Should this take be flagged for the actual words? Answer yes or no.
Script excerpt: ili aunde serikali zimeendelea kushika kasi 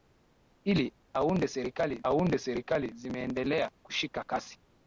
yes